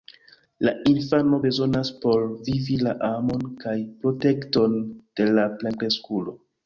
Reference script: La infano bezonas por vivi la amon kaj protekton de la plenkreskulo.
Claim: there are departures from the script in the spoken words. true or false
false